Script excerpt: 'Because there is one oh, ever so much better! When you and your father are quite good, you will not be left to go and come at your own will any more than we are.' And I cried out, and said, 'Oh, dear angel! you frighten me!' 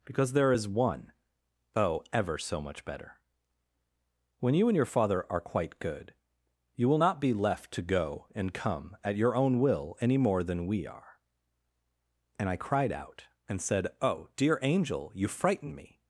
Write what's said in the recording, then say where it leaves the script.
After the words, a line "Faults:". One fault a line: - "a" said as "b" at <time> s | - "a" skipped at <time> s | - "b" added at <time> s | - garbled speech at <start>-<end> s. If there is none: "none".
'Because there is one oh, ever so much better! When you and your father are quite good, you will not be left to go and come at your own will any more than we are.' And I cried out, and said, 'Oh, dear angel! you frighten me!'
Faults:
none